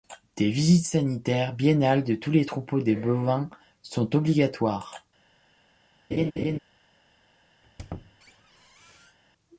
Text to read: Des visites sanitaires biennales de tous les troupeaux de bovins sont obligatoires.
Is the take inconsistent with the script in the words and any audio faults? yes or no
yes